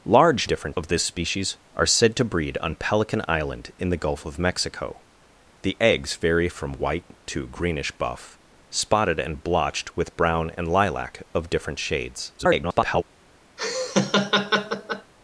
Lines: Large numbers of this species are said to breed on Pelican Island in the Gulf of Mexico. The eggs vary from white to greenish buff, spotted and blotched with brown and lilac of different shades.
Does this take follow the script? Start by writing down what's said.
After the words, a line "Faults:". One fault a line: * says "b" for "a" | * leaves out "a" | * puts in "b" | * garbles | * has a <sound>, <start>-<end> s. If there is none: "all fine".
Large different of this species are said to breed on Pelican Island in the Gulf of Mexico. The eggs vary from white to greenish buff, spotted and blotched with brown and lilac of different shades. [garbled]
Faults:
* says "different" for "numbers"
* garbles
* has a laugh, 13.6-15.1 s